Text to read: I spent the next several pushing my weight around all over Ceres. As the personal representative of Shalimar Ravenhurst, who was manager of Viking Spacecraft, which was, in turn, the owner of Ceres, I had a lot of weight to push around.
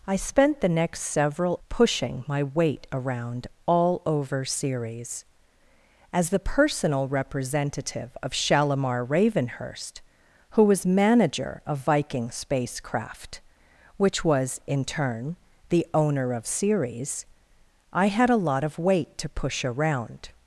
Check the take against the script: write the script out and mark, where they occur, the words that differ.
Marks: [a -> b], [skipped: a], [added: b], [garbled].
I spent the next several pushing my weight around all over Ceres. As the personal representative of Shalimar Ravenhurst, who was manager of Viking Spacecraft, which was, in turn, the owner of Ceres, I had a lot of weight to push around.